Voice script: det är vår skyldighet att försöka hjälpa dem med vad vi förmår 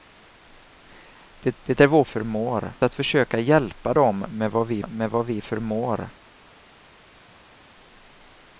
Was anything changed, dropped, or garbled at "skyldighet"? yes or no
yes